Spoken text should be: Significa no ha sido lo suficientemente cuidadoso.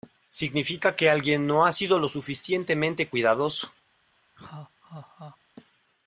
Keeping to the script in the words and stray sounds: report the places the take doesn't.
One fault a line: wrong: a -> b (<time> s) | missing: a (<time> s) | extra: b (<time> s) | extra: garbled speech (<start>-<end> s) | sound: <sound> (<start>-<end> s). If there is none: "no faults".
extra: que alguien (0.9 s)
sound: laugh (4.4-5.4 s)